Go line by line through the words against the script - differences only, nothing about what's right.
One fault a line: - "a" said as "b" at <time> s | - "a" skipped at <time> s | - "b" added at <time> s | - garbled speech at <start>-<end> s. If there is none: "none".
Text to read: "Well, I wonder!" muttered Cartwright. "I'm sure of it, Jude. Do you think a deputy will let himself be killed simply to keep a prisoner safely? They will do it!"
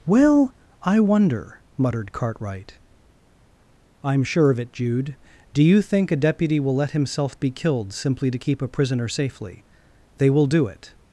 none